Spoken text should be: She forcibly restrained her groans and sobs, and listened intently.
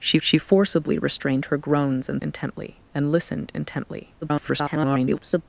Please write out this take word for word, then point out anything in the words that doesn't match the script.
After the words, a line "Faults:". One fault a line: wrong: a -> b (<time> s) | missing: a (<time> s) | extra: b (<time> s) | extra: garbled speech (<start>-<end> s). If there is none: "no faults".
She she forcibly restrained her groans and intently, and listened intently. [garbled]
Faults:
extra: she (0.2 s)
wrong: sobs -> intently (2.2 s)
extra: garbled speech (4.2-5.4 s)